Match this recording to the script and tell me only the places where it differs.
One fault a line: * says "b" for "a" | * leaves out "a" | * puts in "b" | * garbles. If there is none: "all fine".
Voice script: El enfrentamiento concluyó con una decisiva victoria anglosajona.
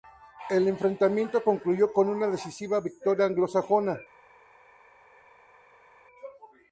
all fine